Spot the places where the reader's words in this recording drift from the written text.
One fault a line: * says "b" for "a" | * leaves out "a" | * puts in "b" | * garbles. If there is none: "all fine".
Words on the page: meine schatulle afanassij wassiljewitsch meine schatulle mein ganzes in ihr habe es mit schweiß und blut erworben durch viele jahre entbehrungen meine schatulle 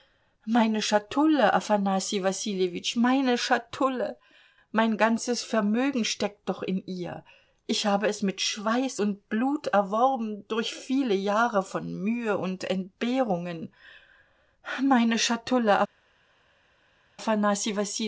* puts in "vermögen steckt doch"
* puts in "ich"
* puts in "von mühe und"